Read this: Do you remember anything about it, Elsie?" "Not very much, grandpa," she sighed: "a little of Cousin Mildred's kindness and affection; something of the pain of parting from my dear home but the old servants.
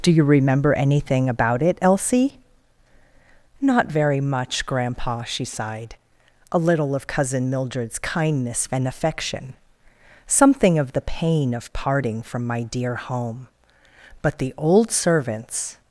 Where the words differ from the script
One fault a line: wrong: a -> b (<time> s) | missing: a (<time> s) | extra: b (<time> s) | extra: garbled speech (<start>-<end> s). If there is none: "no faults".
no faults